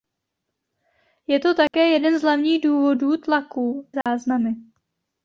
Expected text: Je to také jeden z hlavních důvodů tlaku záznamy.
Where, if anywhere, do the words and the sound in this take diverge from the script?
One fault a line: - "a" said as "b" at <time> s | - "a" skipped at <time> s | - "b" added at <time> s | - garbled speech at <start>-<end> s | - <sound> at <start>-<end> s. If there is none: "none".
- dropout at 1.7-1.7 s
- dropout at 4.0-4.1 s